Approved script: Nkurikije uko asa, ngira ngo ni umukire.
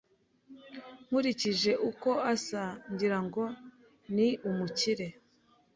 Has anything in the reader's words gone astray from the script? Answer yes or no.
no